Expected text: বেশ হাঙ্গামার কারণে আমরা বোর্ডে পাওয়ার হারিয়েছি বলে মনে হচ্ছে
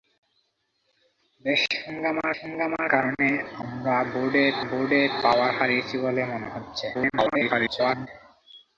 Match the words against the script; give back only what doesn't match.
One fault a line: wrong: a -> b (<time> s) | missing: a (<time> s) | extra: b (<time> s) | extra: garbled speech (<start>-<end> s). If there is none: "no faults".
extra: হাঙ্গামার (2.4 s)
extra: বোর্ডে (4.7 s)
extra: garbled speech (6.9-8.1 s)